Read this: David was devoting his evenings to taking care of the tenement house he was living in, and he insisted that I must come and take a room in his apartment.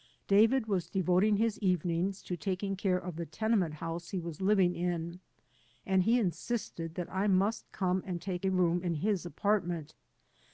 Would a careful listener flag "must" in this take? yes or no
no